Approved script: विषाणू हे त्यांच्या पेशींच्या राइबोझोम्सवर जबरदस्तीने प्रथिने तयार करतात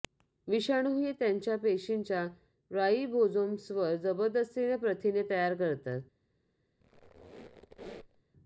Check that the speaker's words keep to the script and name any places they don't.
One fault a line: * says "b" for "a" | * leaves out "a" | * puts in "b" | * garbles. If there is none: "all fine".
all fine